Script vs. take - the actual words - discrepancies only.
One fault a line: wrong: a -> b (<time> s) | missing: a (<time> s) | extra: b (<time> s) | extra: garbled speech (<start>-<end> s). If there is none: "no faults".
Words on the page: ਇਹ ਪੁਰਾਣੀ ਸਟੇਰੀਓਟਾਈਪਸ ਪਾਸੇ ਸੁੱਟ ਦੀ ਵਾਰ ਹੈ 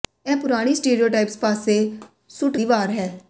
no faults